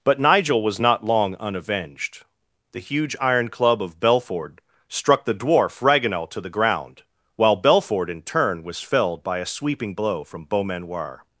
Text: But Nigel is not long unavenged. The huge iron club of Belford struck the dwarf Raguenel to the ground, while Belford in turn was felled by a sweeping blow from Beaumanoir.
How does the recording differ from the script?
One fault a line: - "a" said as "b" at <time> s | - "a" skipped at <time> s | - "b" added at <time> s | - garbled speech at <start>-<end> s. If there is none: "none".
- "is" said as "was" at 0.6 s